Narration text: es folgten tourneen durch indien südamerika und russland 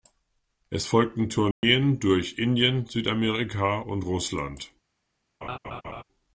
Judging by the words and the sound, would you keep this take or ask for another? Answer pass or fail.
fail